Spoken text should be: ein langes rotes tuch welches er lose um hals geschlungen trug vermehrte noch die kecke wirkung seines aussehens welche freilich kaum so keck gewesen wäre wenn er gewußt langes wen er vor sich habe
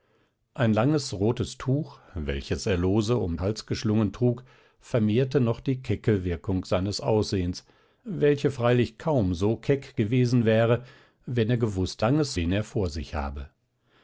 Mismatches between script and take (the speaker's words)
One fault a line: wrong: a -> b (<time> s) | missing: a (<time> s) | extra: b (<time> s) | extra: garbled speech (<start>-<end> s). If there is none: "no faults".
no faults